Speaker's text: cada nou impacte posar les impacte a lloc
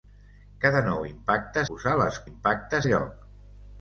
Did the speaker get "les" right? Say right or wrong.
right